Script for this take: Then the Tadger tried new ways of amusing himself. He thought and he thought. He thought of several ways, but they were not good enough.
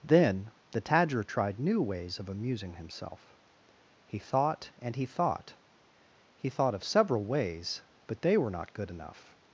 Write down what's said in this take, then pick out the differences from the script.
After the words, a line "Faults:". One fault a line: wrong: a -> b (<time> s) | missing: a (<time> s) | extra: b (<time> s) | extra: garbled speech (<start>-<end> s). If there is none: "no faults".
Then the Tadger tried new ways of amusing himself. He thought and he thought. He thought of several ways, but they were not good enough.
Faults:
no faults